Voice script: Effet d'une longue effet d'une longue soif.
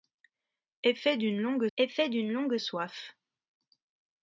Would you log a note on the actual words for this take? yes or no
no